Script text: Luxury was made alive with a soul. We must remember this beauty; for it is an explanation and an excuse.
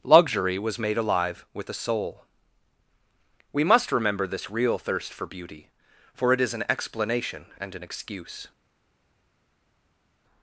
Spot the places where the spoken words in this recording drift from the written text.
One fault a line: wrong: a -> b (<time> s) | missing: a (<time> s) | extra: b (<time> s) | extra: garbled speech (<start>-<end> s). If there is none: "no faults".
extra: real thirst for (4.5 s)